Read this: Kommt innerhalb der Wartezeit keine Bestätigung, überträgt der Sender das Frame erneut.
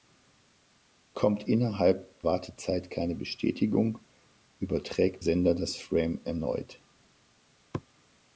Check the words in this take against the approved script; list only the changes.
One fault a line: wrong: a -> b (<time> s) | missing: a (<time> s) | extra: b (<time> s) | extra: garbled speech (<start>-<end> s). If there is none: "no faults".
missing: der (2.2 s)
missing: der (5.2 s)